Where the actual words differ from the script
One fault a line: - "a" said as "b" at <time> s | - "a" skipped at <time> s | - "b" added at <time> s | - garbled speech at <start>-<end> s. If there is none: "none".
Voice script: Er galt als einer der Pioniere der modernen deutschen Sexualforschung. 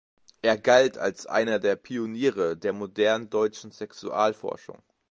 none